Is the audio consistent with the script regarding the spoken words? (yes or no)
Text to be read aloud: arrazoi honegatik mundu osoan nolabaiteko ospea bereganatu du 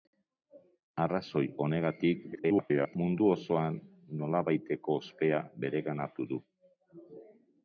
no